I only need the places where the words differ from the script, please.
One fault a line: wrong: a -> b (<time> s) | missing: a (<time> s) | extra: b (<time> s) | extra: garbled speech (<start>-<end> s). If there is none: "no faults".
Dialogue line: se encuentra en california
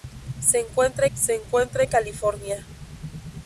extra: se encuentra (1.1 s)